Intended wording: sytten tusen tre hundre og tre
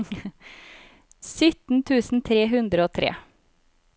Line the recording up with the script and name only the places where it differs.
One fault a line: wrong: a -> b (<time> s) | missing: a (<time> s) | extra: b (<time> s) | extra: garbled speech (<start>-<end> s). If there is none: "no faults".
no faults